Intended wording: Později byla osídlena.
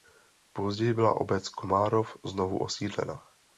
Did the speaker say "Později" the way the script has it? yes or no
yes